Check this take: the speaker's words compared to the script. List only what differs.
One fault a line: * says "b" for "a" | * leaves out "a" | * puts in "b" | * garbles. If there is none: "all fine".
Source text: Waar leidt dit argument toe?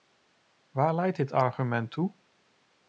all fine